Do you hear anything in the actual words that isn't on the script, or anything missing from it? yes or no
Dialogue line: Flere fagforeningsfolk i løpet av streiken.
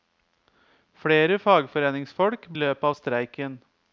no